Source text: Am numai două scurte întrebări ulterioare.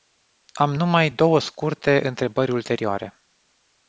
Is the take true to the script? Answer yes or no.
yes